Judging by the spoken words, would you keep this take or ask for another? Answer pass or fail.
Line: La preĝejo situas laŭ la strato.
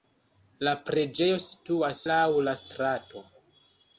pass